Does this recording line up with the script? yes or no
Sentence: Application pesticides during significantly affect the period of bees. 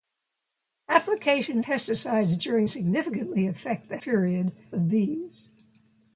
yes